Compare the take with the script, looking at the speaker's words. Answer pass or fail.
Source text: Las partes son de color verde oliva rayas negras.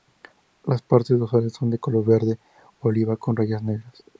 fail